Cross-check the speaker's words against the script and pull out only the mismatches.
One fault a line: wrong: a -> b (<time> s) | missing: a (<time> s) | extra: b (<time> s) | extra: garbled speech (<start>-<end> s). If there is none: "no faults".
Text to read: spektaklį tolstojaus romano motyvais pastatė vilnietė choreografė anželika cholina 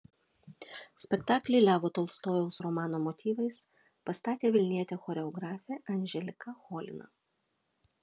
extra: levo (1.6 s)